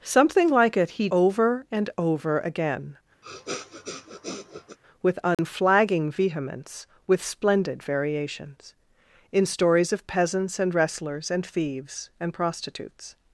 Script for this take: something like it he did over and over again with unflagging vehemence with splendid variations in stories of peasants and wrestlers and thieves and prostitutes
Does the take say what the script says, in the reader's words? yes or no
no